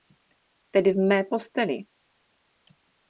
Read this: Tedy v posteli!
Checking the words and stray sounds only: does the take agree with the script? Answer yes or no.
no